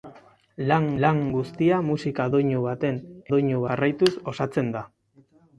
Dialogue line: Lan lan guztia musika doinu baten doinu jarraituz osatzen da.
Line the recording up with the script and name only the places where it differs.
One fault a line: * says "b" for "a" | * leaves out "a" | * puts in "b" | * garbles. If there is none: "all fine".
all fine